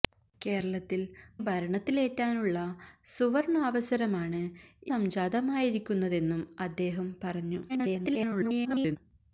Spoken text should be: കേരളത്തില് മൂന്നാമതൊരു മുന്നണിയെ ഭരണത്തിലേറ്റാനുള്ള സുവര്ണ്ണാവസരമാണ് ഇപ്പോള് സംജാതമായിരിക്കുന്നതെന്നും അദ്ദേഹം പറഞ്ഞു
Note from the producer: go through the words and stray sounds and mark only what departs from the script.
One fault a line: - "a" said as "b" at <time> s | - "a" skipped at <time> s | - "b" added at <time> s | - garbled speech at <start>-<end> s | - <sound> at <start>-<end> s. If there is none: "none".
- "മൂന്നാമതൊരു മുന്നണിയെ" skipped at 1.0 s
- "ഇപ്പോള്" skipped at 4.4 s
- garbled speech at 7.7-9.0 s